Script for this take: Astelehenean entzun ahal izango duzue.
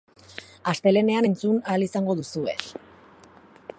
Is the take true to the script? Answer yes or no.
yes